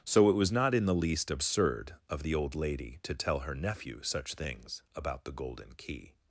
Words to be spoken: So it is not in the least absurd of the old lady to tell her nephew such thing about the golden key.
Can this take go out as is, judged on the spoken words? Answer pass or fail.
fail